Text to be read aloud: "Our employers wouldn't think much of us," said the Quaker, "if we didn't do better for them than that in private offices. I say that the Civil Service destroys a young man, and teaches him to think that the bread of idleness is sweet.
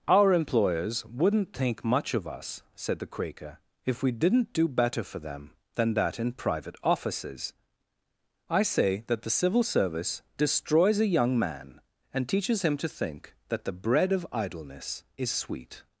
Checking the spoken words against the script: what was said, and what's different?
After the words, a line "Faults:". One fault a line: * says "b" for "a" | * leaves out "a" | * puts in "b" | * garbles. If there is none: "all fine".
"Our employers wouldn't think much of us," said the Quaker, "if we didn't do better for them than that in private offices. I say that the Civil Service destroys a young man, and teaches him to think that the bread of idleness is sweet.
Faults:
all fine